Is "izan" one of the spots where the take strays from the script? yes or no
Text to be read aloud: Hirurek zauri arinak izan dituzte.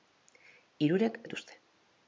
yes